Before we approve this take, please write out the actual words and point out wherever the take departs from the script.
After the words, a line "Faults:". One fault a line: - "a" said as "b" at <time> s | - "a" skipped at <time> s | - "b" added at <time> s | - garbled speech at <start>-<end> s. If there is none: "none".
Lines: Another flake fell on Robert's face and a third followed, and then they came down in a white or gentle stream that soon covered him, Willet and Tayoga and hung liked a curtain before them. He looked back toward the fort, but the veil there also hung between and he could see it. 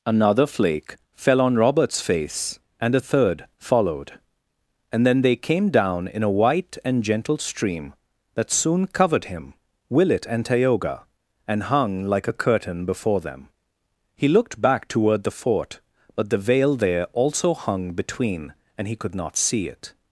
Another flake fell on Robert's face and a third followed, and then they came down in a white and gentle stream that soon covered him, Willet and Tayoga and hung like a curtain before them. He looked back toward the fort, but the veil there also hung between and he could not see it.
Faults:
- "or" said as "and" at 6.8 s
- "liked" said as "like" at 12.0 s
- "not" added at 19.1 s